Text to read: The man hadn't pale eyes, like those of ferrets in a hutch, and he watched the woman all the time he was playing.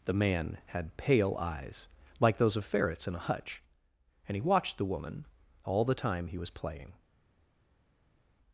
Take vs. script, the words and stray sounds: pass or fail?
fail